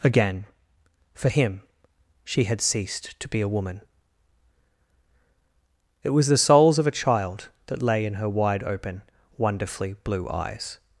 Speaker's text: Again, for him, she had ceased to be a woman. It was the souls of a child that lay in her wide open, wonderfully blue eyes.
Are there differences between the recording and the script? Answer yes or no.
no